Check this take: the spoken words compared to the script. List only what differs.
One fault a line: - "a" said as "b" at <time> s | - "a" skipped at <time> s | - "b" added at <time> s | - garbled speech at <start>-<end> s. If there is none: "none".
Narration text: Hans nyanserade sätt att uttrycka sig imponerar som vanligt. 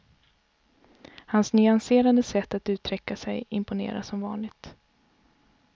none